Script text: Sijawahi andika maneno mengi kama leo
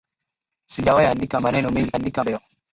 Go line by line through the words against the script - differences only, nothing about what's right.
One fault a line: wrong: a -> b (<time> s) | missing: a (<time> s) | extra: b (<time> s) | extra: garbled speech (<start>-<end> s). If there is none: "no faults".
wrong: kama -> andika (1.9 s)